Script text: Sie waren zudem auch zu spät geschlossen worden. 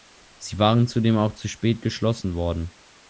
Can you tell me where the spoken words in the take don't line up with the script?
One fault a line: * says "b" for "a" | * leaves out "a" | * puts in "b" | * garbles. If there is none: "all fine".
all fine